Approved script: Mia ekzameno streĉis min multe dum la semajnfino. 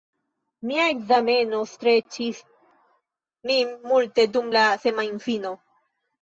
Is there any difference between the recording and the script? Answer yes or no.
no